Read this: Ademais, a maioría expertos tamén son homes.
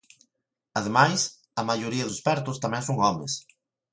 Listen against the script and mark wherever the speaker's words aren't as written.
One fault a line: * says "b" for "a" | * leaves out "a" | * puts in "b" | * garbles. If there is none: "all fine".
all fine